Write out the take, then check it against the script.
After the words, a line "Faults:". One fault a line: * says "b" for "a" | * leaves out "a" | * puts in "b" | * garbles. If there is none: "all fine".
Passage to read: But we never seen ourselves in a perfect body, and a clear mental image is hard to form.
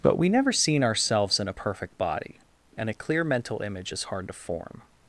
But we never seen ourselves in a perfect body, and a clear mental image is hard to form.
Faults:
all fine